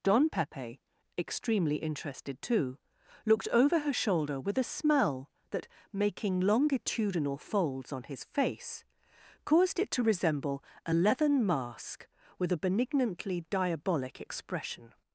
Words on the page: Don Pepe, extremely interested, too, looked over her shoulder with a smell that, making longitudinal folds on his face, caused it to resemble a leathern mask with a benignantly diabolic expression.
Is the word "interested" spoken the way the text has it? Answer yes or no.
yes